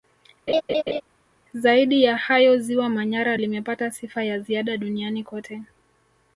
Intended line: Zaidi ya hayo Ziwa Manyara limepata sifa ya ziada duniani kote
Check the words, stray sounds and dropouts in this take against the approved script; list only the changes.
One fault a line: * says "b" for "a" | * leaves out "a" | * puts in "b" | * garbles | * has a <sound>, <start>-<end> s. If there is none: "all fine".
* has a laugh, 0.5-1.0 s